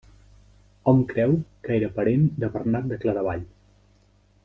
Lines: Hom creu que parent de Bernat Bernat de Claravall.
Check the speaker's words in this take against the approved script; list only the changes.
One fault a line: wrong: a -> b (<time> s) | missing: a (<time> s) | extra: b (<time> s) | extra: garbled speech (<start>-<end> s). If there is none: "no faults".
extra: era (1.8 s)
missing: Bernat (2.9 s)